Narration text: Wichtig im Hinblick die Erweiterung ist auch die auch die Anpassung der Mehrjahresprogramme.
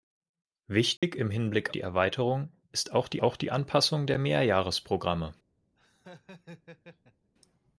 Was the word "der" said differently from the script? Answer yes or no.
no